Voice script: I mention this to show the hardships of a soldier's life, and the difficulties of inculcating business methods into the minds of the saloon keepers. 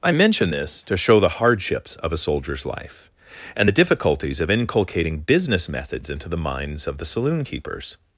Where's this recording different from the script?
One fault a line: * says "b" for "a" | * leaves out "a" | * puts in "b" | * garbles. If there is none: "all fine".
all fine